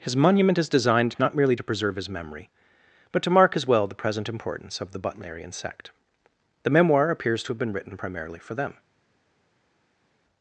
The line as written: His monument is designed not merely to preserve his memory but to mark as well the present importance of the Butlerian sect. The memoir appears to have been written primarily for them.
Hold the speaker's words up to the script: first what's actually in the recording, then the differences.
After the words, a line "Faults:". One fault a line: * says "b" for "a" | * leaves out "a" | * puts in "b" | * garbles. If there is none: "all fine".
His monument is designed not merely to preserve his memory but to mark as well the present importance of the Butlerian sect. The memoir appears to have been written primarily for them.
Faults:
all fine